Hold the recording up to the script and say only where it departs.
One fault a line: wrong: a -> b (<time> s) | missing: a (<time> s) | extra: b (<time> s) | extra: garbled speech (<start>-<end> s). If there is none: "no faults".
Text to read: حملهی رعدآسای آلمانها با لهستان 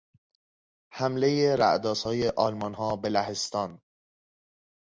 wrong: با -> به (3.0 s)